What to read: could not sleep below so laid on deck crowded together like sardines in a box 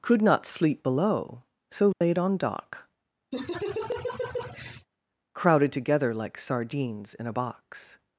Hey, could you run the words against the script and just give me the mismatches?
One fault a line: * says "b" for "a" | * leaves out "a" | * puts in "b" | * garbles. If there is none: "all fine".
* says "dock" for "deck"